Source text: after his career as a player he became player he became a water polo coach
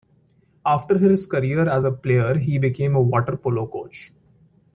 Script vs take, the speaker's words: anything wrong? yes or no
yes